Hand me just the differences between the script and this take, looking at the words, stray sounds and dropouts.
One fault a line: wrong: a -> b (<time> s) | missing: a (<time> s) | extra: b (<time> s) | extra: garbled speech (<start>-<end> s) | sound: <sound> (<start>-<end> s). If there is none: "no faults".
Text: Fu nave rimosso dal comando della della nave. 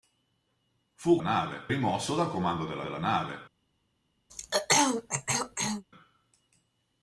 sound: throat clearing (4.3-5.8 s)